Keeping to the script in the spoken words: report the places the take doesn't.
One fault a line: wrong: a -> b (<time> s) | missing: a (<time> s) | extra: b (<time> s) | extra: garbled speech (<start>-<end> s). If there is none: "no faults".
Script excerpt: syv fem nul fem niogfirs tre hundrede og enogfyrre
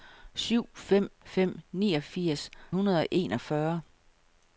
missing: nul (1.1 s)
missing: tre (2.5 s)